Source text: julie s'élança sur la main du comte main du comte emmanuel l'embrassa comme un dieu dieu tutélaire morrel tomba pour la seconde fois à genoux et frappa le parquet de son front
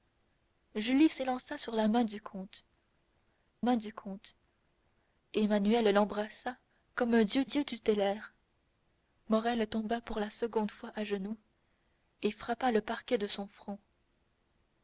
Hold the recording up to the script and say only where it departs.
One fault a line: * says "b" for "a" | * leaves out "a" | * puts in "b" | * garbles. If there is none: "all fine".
all fine